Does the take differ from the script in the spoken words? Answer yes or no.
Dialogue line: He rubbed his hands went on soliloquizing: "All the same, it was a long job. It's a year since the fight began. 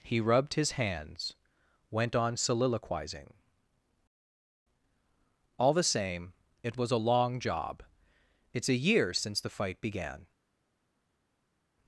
no